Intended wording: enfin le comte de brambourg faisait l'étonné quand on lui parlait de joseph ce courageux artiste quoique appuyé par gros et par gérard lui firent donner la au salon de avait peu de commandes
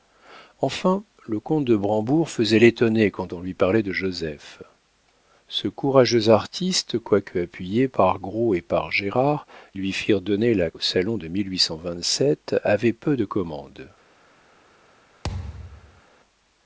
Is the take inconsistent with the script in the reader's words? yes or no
no